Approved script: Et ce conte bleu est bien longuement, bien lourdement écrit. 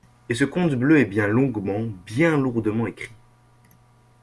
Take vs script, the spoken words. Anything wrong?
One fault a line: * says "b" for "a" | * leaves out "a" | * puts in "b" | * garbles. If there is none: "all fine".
all fine